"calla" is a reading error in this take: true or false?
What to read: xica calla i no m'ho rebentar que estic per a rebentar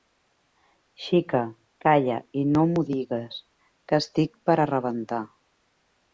false